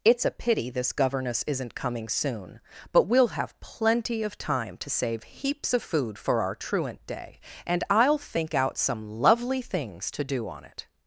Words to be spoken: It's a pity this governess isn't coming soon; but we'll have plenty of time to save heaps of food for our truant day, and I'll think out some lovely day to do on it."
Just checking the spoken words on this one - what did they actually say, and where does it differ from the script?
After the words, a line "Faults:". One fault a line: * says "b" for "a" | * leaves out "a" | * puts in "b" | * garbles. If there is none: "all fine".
It's a pity this governess isn't coming soon; but we'll have plenty of time to save heaps of food for our truant day, and I'll think out some lovely things to do on it."
Faults:
* says "things" for "day"